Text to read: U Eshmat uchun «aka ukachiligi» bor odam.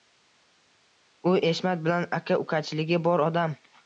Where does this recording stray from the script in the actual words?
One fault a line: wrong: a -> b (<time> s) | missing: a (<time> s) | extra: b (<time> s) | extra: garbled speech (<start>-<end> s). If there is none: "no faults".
wrong: uchun -> bilan (1.9 s)